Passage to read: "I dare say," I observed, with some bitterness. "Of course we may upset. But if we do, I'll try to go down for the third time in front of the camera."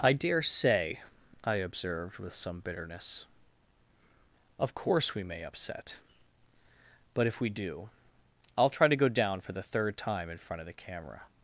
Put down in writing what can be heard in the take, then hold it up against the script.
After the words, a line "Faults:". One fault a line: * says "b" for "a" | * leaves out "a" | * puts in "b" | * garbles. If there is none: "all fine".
"I dare say," I observed, with some bitterness. "Of course we may upset. But if we do, I'll try to go down for the third time in front of the camera."
Faults:
all fine